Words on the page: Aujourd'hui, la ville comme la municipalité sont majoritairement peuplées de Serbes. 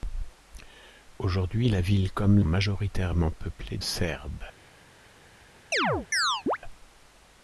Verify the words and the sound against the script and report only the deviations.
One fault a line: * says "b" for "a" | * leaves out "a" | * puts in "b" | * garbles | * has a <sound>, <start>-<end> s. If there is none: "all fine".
* leaves out "la municipalité sont"
* leaves out "de"
* has a chirp, 5.7-6.6 s